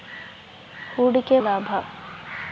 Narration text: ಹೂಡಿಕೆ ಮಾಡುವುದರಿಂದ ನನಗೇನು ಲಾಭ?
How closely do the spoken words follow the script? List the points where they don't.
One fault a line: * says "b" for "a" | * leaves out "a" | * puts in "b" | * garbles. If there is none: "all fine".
* leaves out "ಮಾಡುವುದರಿಂದ ನನಗೇನು"